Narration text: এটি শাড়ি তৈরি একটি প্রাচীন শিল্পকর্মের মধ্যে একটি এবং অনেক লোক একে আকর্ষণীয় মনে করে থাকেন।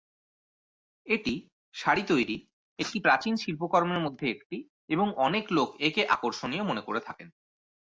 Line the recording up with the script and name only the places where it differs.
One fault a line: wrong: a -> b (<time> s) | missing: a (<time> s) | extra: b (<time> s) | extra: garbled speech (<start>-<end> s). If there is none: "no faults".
no faults